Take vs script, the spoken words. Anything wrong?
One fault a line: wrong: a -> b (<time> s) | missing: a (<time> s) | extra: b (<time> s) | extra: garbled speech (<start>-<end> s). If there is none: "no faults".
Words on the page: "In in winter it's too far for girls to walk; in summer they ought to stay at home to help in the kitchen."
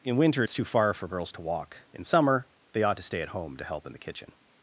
missing: in (0.2 s)